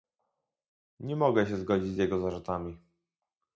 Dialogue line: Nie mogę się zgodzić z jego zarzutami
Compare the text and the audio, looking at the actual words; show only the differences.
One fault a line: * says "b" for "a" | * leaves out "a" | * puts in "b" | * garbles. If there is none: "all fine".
all fine